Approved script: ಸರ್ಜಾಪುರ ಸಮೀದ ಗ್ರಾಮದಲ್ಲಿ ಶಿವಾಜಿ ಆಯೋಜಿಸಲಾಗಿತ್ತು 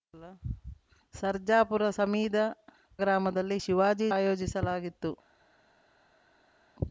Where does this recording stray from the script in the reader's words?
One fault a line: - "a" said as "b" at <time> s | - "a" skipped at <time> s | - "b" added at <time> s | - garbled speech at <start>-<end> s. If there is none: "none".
none